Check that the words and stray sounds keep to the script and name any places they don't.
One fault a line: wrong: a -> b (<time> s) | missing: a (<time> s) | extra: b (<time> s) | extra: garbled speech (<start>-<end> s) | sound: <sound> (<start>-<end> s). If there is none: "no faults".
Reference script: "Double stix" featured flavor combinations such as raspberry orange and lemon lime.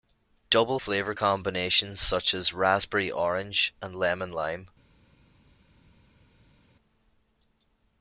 missing: stix featured (0.8 s)